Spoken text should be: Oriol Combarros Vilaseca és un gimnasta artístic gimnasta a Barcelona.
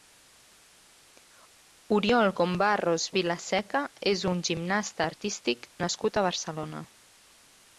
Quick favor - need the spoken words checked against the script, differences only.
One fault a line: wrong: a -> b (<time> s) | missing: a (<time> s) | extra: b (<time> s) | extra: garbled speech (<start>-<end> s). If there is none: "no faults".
wrong: gimnasta -> nascut (5.9 s)